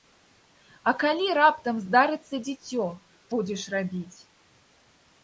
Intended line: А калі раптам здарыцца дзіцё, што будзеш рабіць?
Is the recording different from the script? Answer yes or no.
yes